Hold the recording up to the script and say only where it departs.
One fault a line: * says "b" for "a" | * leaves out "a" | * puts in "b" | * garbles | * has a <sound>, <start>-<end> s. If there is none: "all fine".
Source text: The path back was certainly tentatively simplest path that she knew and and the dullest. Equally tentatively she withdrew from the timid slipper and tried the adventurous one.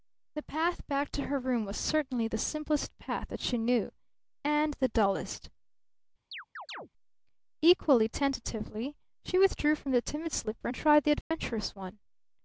* puts in "to her room"
* says "the" for "tentatively"
* leaves out "and"
* has a chirp, 6.3-6.9 s
* has a dropout, 11.2-11.3 s